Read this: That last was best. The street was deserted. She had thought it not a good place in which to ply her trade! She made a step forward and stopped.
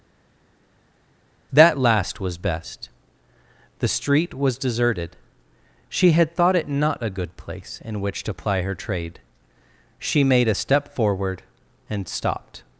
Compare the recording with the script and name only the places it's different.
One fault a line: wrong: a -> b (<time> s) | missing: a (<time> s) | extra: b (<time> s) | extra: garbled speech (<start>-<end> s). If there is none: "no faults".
no faults